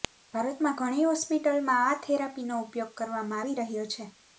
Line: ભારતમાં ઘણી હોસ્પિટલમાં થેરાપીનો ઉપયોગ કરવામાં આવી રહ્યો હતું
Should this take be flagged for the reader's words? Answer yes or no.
yes